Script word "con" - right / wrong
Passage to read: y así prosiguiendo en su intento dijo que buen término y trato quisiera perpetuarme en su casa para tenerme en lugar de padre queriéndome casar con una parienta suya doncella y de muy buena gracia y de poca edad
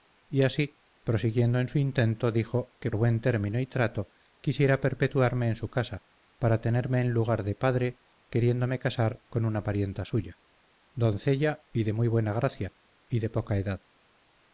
right